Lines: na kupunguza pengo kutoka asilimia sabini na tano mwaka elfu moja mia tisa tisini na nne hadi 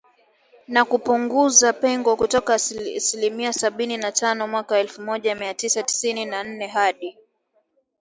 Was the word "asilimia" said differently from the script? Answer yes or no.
no